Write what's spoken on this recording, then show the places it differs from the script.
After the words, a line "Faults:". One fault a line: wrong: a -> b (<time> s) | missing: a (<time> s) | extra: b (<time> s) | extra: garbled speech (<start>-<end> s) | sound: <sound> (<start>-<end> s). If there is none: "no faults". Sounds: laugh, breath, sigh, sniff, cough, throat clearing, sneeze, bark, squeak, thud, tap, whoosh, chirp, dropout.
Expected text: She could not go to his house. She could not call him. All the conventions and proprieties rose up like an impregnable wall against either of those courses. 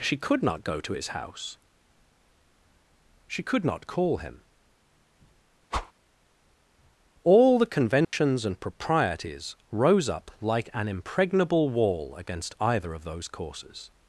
She could not go to his house. She could not call him. All the conventions and proprieties rose up like an impregnable wall against either of those courses.
Faults:
sound: whoosh (5.7-5.9 s)
sound: dropout (8.0-8.1 s)